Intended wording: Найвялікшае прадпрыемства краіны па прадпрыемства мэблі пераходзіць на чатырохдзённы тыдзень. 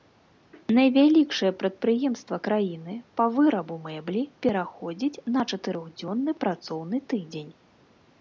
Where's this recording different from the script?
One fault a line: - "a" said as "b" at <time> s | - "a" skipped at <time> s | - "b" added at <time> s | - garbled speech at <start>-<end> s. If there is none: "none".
- "прадпрыемства" said as "вырабу" at 3.4 s
- "працоўны" added at 6.4 s